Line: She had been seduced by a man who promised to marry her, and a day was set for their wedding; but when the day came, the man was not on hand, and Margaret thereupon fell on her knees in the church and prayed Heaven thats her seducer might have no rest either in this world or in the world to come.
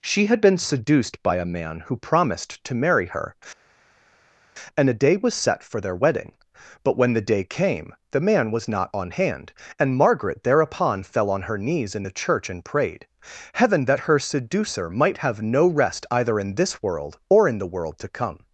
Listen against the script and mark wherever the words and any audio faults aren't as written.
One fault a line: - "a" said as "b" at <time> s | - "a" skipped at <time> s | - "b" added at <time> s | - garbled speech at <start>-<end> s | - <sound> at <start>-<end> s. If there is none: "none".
- "thats" said as "that" at 13.9 s